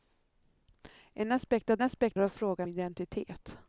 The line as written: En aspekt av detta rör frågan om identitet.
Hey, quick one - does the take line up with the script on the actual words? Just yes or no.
no